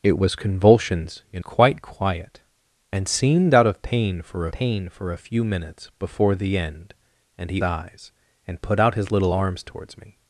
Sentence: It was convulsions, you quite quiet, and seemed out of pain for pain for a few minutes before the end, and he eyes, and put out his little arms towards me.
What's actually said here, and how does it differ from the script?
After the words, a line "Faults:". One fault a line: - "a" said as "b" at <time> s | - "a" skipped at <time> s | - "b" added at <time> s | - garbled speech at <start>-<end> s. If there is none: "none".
It was convulsions, you quite quiet, and seemed out of pain for pain for a few minutes before the end, and he eyes, and put out his little arms towards me.
Faults:
none